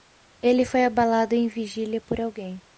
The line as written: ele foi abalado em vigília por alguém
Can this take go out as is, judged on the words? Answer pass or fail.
pass